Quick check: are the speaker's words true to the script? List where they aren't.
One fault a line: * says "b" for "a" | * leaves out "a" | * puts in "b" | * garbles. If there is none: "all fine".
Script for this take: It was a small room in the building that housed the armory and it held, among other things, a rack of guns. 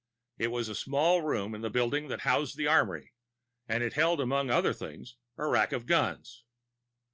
all fine